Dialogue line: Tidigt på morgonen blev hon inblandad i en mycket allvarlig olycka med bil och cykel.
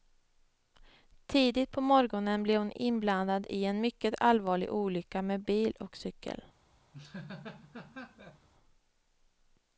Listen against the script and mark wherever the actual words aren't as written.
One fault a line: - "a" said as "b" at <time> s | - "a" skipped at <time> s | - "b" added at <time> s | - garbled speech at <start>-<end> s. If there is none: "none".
none